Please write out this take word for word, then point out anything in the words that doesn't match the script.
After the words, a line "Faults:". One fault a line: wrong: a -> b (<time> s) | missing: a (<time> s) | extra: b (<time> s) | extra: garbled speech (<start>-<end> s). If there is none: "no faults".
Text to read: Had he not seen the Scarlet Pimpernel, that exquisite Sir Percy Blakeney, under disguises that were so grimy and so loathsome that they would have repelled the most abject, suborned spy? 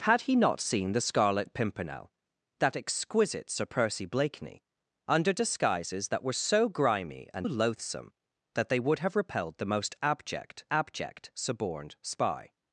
Had he not seen the Scarlet Pimpernel, that exquisite Sir Percy Blakeney, under disguises that were so grimy and loathsome that they would have repelled the most abject abject, suborned spy?
Faults:
missing: so (7.5 s)
extra: abject (10.7 s)